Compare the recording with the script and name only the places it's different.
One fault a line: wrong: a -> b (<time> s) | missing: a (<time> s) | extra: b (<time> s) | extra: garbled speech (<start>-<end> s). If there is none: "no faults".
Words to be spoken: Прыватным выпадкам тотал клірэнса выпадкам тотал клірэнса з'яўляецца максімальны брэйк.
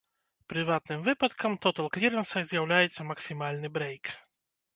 missing: выпадкам тотал клірэнса (2.4 s)